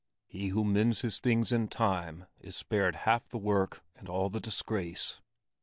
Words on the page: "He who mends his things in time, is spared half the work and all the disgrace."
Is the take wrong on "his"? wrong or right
right